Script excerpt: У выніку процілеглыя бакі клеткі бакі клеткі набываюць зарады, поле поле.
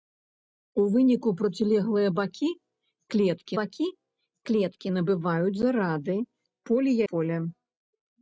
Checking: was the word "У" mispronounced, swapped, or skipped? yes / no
no